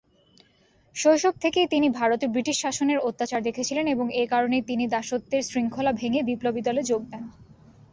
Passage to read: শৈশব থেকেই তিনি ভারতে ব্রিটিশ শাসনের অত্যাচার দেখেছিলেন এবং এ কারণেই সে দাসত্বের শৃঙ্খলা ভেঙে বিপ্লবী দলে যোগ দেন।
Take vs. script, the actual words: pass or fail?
fail